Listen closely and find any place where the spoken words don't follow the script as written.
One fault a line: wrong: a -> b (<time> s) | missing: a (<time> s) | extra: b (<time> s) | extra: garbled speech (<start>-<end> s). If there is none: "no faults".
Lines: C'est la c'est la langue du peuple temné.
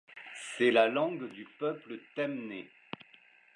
missing: c'est la (0.9 s)